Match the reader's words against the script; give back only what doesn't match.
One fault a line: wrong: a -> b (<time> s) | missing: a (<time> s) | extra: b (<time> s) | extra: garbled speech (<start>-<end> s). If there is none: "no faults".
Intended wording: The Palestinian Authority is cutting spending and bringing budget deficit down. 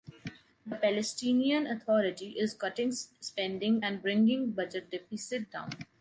no faults